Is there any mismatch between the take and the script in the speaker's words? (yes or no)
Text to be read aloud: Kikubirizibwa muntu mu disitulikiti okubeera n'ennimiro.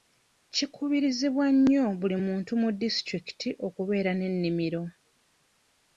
yes